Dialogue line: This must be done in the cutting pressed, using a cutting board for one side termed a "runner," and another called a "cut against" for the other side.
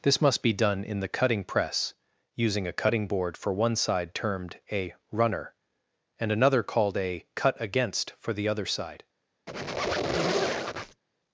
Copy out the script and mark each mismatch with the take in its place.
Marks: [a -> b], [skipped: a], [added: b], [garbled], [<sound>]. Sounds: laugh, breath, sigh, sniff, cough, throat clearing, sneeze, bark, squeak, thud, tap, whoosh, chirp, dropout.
This must be done in the cutting [pressed, -> press] using a cutting board for one side termed a "runner," and another called a "cut against" for the other side. [squeak]